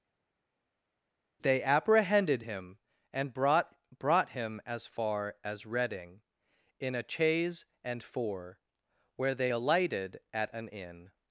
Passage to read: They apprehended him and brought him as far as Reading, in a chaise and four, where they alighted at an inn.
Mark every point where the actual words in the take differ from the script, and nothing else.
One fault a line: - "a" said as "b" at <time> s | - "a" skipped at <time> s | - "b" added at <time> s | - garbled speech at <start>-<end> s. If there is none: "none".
- "brought" added at 4.0 s